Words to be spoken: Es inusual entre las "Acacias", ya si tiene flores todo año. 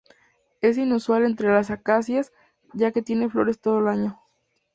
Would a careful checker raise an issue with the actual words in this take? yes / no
yes